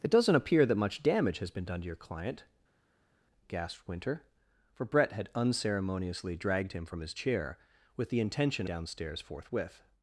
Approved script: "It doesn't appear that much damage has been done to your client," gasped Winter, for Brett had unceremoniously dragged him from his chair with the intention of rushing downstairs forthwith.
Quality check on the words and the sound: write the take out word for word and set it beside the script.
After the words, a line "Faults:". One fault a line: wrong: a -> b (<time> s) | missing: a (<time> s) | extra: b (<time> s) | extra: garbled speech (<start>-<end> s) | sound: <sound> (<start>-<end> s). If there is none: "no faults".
"It doesn't appear that much damage has been done to your client," gasped Winter, for Brett had unceremoniously dragged him from his chair with the intention downstairs forthwith.
Faults:
missing: of rushing (8.7 s)